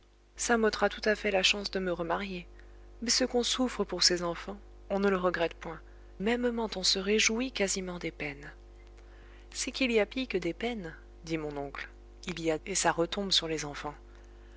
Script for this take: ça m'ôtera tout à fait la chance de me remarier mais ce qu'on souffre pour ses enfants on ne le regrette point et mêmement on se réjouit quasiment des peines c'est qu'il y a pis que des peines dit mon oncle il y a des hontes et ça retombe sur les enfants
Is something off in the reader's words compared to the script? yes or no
yes